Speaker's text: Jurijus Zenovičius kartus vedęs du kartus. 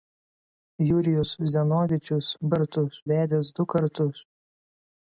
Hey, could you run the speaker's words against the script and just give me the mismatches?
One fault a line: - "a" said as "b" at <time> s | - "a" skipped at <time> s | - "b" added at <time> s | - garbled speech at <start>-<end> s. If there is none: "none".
none